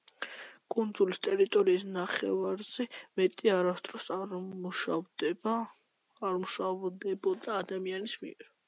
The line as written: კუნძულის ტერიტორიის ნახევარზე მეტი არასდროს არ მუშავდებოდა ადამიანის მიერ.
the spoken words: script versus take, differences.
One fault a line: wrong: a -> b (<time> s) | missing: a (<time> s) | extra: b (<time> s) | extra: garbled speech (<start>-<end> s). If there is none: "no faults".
no faults